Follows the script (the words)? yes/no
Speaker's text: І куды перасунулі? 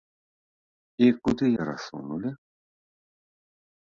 yes